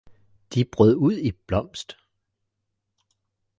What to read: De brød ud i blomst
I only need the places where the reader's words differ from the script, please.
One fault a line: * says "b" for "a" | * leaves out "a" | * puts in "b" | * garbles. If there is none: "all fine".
all fine